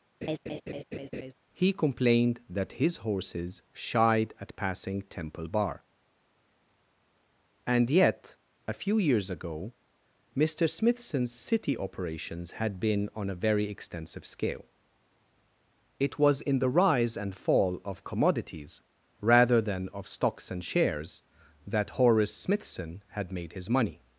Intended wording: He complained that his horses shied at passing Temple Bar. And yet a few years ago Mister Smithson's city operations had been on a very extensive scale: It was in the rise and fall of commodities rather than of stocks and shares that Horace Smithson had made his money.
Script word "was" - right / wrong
right